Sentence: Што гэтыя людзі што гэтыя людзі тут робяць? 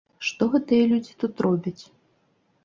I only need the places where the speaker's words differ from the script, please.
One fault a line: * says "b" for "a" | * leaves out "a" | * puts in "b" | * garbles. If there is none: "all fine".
* leaves out "што гэтыя людзі"